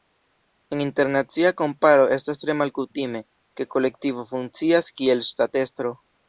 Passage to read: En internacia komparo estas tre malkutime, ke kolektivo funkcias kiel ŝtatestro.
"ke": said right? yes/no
yes